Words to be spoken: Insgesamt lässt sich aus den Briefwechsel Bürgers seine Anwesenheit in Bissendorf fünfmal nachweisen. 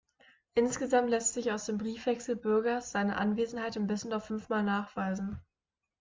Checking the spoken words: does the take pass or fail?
fail